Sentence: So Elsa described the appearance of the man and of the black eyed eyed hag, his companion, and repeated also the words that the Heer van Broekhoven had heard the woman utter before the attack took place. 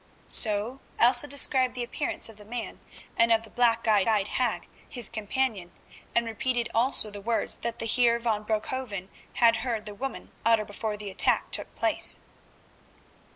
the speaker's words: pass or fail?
pass